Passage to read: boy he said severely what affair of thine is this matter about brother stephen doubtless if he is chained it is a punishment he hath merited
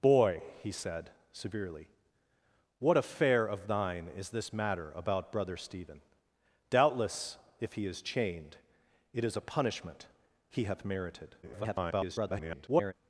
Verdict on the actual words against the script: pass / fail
fail